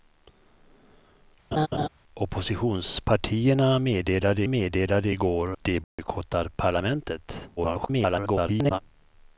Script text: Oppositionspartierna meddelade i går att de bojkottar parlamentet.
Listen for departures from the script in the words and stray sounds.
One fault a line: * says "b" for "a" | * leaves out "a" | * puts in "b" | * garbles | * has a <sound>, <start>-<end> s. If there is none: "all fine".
* has a laugh, 1.5-1.9 s
* puts in "meddelade"
* leaves out "att"
* has a dropout, 5.8-6.0 s
* garbles